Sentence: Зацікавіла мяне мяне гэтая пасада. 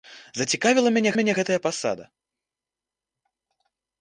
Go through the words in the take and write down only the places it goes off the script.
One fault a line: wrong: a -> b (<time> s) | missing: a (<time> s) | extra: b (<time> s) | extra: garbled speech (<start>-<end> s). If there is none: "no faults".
no faults